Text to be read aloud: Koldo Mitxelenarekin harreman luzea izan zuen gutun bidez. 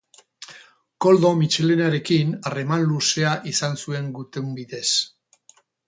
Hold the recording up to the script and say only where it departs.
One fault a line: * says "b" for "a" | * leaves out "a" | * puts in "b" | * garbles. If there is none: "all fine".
all fine